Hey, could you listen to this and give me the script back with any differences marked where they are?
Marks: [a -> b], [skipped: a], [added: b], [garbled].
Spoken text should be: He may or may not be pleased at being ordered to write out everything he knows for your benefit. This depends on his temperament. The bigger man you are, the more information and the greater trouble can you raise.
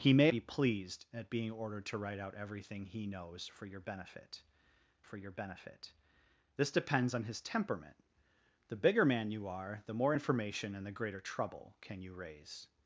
He may [skipped: or may not] be pleased at being ordered to write out everything he knows for your benefit. [added: for your benefit] This depends on his temperament. The bigger man you are, the more information and the greater trouble can you raise.